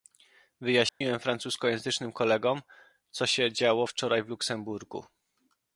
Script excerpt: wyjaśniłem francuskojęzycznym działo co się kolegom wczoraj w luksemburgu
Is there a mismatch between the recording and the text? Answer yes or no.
yes